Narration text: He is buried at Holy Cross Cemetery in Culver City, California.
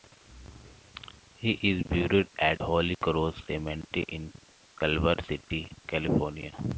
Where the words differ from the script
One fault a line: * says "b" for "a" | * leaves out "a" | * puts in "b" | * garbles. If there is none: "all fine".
all fine